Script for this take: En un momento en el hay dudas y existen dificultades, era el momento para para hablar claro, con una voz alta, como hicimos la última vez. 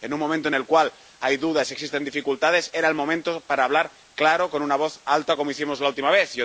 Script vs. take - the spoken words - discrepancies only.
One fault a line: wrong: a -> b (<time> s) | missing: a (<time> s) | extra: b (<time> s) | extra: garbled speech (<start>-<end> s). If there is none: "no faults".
extra: cual (0.6 s)
missing: para (3.6 s)